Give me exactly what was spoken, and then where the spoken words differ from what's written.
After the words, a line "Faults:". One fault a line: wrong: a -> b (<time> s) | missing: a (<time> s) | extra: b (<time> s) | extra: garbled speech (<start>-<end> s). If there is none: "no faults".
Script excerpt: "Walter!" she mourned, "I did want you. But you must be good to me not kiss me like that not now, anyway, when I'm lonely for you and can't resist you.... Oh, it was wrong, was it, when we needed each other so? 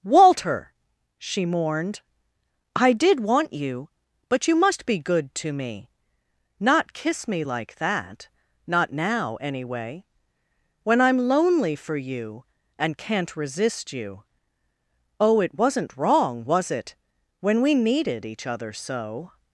"Walter!" she mourned, "I did want you. But you must be good to me not kiss me like that not now, anyway, when I'm lonely for you and can't resist you.... Oh, it wasn't wrong, was it, when we needed each other so?
Faults:
wrong: was -> wasn't (15.6 s)